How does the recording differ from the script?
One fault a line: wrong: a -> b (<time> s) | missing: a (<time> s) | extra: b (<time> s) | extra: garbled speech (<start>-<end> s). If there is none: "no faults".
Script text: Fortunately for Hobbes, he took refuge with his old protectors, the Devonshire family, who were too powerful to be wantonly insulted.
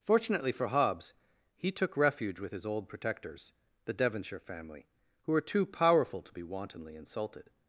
no faults